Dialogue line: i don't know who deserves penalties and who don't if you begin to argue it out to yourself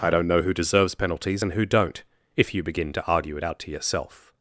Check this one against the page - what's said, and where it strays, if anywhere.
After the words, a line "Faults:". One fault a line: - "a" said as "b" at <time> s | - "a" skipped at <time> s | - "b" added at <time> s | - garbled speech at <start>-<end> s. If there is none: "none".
i don't know who deserves penalties and who don't if you begin to argue it out to yourself
Faults:
none